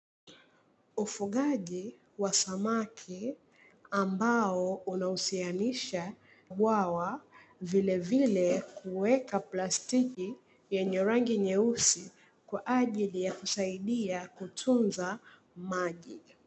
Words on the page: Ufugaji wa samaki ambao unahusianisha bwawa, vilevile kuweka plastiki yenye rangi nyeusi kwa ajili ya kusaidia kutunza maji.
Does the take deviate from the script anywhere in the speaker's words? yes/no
no